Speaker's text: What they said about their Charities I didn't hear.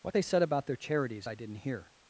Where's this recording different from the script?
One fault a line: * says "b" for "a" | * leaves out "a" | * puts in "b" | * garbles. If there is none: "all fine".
all fine